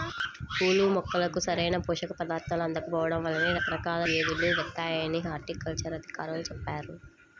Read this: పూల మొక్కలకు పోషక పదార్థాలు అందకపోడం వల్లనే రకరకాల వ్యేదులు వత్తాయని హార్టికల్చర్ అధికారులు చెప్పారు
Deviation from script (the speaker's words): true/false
true